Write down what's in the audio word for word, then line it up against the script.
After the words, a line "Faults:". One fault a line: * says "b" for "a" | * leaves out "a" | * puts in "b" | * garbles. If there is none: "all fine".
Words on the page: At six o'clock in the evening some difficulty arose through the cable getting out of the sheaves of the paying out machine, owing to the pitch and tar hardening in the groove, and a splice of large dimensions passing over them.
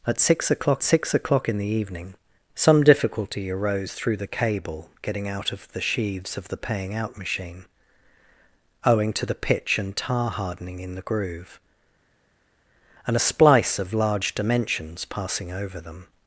At six o'clock six o'clock in the evening some difficulty arose through the cable getting out of the sheaves of the paying out machine, owing to the pitch and tar hardening in the groove, and a splice of large dimensions passing over them.
Faults:
* puts in "six o'clock"